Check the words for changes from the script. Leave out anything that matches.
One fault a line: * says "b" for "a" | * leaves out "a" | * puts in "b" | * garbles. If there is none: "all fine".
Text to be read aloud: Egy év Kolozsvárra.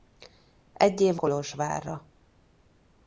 all fine